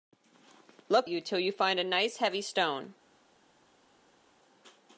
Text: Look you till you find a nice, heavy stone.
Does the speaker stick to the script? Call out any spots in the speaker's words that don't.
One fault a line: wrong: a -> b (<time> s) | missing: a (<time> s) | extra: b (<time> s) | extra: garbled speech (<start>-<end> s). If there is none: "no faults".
no faults